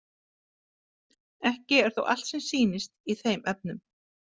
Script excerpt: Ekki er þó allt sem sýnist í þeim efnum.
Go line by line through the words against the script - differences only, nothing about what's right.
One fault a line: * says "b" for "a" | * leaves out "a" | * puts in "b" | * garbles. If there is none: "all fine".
all fine